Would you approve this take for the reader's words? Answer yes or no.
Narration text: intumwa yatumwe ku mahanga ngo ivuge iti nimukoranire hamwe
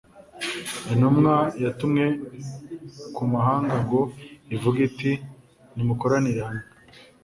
yes